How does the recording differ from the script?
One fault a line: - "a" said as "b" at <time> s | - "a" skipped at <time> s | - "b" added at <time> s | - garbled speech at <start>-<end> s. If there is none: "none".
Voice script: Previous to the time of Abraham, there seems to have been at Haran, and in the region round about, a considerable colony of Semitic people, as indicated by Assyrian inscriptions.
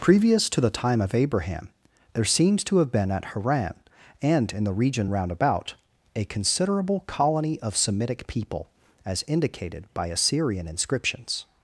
none